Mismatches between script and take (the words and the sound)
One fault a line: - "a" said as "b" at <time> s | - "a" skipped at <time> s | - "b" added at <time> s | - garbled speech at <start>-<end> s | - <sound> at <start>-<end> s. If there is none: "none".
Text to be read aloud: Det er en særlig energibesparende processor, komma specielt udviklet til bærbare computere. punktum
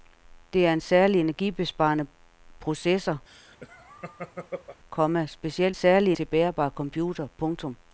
- laugh at 3.3-4.8 s
- "udviklet" said as "særlig" at 5.7 s